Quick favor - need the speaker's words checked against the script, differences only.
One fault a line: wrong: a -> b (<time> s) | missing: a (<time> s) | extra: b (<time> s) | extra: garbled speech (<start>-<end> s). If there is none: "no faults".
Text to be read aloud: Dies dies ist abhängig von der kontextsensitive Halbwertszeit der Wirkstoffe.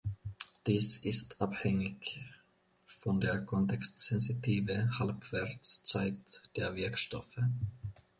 missing: dies (1.0 s)